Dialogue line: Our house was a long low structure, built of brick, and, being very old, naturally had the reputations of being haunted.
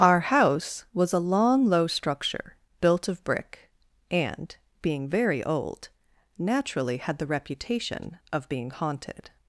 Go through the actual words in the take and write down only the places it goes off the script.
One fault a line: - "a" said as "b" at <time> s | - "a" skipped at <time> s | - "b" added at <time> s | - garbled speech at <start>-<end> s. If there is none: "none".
- "reputations" said as "reputation" at 7.3 s